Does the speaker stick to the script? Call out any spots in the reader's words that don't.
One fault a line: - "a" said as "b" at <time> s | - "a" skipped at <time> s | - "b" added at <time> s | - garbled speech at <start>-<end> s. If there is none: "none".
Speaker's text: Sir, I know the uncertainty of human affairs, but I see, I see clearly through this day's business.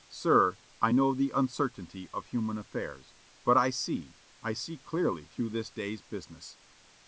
none